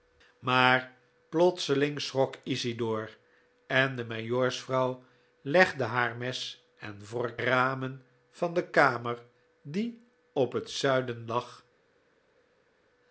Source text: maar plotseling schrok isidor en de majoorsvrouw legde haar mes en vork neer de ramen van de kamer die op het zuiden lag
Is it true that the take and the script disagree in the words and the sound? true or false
true